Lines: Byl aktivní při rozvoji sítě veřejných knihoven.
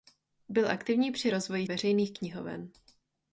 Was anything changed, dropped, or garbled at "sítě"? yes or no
yes